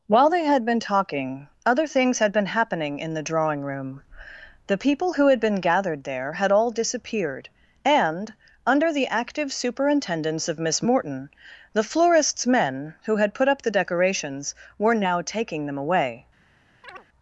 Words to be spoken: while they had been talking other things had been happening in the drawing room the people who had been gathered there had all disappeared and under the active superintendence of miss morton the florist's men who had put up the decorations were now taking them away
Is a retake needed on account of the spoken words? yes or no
no